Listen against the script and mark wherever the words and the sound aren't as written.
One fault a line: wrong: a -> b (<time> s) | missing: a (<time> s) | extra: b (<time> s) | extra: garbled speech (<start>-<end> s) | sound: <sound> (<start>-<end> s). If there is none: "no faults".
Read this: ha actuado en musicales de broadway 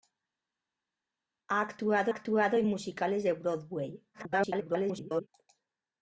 extra: actuado (2.1 s)
extra: garbled speech (4.1-5.3 s)